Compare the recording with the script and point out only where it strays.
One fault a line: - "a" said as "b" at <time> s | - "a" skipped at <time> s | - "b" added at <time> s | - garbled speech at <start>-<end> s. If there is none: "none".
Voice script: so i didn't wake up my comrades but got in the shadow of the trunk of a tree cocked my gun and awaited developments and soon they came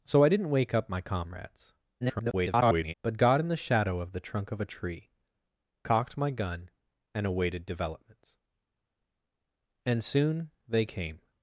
- garbled speech at 2.0-2.9 s